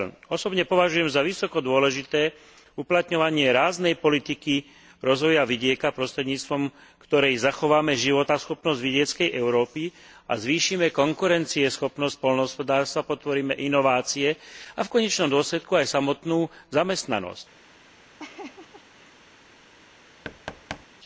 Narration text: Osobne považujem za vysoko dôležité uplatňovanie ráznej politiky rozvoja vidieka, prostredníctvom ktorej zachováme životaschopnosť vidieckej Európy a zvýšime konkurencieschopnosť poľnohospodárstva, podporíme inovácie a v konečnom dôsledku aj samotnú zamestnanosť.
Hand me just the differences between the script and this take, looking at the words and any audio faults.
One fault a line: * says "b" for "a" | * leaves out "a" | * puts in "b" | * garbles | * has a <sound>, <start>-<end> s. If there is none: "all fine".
* has a laugh, 18.2-19.3 s
* has a thud, 20.2-20.9 s